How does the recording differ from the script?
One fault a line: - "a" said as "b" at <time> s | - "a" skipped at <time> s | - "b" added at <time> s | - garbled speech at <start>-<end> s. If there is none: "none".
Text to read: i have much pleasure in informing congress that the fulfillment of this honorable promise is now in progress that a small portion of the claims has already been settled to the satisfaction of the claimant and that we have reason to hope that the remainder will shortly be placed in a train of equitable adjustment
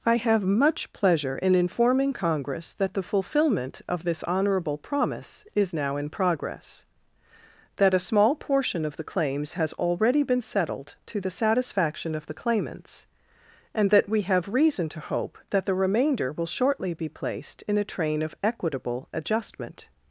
- "claimant" said as "claimants" at 12.3 s